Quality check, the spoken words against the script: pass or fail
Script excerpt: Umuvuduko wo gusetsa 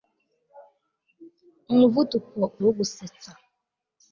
pass